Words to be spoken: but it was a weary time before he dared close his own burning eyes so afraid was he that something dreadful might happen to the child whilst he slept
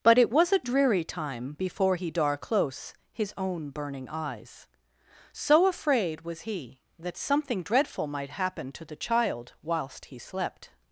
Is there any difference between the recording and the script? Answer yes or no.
yes